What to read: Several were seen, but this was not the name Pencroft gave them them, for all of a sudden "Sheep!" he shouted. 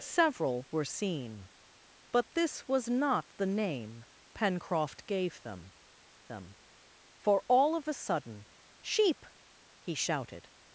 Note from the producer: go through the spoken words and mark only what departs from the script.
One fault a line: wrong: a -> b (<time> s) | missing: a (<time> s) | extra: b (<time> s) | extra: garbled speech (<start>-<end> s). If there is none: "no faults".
no faults